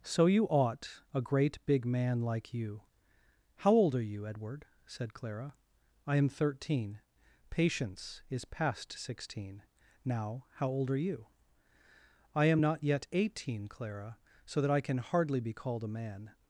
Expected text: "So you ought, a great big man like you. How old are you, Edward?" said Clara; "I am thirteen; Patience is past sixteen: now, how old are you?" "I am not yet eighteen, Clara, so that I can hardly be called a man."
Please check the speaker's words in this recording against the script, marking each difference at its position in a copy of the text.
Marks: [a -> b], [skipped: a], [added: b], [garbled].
"So you ought, a great big man like you. How old are you, Edward?" said Clara; "I am thirteen; Patience is past sixteen: now, how old are you?" "I am not yet eighteen, Clara, so that I can hardly be called a man."